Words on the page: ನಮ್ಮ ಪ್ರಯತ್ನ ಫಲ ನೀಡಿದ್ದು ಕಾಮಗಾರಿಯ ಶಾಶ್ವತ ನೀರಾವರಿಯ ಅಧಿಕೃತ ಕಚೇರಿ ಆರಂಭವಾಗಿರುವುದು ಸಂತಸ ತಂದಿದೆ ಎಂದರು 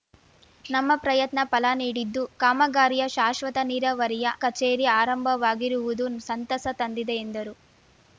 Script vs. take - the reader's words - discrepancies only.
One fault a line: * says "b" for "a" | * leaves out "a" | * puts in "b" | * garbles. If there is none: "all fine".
* leaves out "ಅಧಿಕೃತ"